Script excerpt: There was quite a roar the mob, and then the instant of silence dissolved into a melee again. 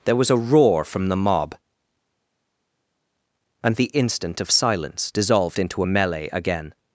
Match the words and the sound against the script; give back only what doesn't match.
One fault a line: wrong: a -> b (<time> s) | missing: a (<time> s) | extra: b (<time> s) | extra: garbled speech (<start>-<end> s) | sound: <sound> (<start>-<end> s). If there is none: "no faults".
missing: quite (0.3 s)
extra: from (0.8 s)
missing: then (3.8 s)